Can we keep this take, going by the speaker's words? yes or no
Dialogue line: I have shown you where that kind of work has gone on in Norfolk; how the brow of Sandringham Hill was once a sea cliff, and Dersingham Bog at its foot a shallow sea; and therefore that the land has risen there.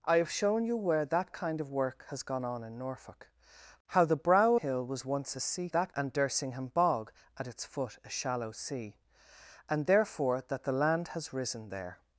no